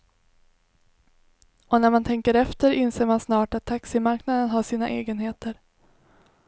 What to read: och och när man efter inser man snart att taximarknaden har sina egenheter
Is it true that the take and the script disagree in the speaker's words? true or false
true